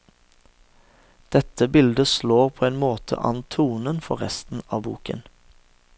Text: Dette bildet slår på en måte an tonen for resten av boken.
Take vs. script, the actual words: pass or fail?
pass